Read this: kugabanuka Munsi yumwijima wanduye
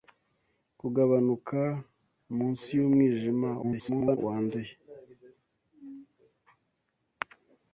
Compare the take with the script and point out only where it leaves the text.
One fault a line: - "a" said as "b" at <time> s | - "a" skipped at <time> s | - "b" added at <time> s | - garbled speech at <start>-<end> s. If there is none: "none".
- garbled speech at 3.6-4.2 s